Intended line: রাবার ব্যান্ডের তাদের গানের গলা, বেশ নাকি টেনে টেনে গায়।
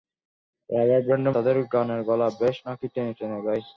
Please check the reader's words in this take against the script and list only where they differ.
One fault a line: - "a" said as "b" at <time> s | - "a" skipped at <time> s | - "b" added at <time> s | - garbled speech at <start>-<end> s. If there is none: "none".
none